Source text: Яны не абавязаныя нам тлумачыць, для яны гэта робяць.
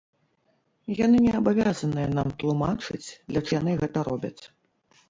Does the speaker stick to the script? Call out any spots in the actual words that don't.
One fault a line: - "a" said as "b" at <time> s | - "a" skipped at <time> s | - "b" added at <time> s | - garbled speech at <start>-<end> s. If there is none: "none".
none